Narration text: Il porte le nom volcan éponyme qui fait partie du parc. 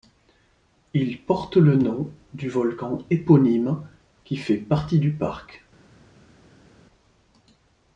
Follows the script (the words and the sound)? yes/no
no